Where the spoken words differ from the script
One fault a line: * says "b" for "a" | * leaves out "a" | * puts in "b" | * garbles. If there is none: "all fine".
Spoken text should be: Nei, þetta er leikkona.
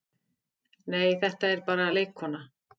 * puts in "bara"